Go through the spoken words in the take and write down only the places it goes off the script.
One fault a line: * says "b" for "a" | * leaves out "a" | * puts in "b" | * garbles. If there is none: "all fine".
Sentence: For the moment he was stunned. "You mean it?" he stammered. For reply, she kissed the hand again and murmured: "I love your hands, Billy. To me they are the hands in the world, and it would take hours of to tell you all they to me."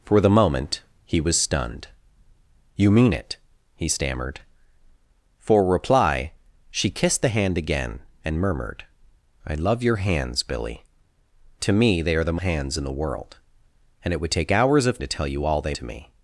all fine